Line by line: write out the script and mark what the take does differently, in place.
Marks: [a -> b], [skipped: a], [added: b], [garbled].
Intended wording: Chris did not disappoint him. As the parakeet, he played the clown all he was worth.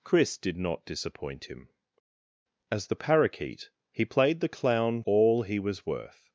Chris did not disappoint him. As the parakeet, he played the clown all he was worth.